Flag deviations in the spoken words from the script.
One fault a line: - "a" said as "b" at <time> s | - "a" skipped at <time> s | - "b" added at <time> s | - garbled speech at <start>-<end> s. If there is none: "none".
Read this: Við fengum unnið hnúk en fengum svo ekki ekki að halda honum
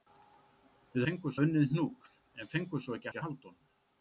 none